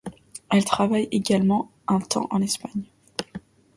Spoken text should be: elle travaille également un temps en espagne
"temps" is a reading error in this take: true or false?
false